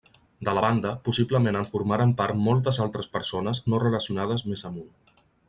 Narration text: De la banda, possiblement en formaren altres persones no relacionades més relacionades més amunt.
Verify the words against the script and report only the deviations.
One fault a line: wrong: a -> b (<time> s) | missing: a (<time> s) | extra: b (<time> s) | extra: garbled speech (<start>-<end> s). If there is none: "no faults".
extra: part moltes (2.2 s)
missing: relacionades més (4.7 s)